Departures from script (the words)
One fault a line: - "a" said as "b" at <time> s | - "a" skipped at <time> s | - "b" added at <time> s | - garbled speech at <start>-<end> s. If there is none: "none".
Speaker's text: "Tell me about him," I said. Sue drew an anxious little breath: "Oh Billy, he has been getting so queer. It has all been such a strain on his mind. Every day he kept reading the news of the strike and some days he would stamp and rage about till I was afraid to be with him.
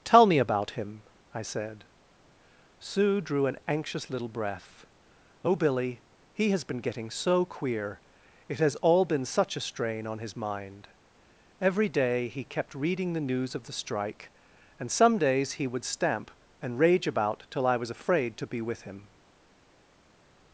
none